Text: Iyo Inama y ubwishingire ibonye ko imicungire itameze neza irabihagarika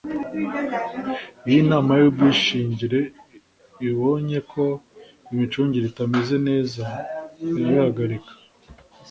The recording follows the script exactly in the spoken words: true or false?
true